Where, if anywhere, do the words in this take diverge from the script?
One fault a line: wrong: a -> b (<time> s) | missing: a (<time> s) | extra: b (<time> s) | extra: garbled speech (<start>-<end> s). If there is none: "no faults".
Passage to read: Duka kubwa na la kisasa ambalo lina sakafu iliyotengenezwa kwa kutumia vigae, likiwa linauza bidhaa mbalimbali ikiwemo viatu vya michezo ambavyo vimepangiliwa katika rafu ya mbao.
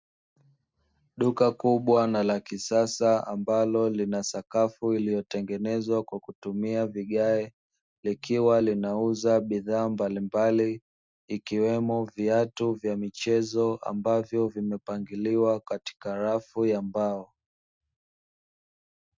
no faults